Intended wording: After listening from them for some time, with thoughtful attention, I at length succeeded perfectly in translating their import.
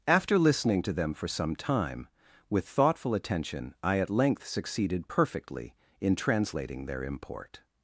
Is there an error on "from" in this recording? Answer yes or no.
yes